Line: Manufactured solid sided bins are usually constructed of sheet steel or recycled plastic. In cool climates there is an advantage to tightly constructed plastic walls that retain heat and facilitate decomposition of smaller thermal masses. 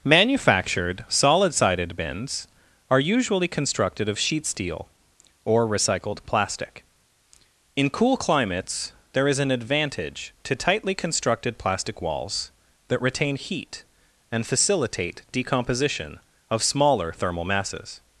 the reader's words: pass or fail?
pass